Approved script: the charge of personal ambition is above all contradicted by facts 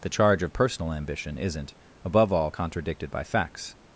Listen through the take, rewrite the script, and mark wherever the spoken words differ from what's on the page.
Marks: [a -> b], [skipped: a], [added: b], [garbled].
the charge of personal ambition [is -> isn't] above all contradicted by facts